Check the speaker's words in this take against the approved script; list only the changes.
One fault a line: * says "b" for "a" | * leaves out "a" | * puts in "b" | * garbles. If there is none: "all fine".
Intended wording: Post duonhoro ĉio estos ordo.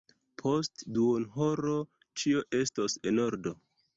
* puts in "en"